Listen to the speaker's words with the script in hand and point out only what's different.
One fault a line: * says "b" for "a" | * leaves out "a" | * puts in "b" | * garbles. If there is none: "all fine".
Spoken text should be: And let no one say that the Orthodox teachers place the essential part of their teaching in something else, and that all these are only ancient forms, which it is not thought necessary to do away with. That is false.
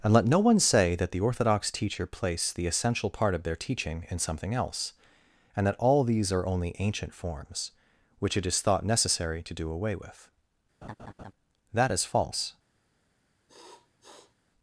* says "teacher" for "teachers"
* leaves out "not"